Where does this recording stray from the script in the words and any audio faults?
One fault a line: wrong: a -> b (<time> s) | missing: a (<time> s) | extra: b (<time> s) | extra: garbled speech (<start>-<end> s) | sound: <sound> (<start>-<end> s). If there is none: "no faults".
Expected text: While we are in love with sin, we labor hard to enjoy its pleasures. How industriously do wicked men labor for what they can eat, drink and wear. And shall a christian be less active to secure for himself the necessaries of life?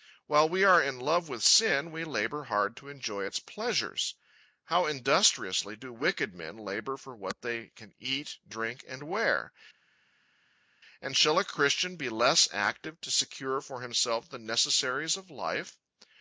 no faults